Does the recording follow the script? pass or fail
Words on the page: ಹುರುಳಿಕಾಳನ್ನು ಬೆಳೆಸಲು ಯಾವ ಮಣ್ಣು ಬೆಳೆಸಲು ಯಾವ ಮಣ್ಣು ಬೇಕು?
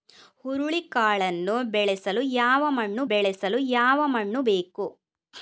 pass